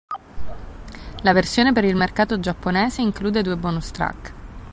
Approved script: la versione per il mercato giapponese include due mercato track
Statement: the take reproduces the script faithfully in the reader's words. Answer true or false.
false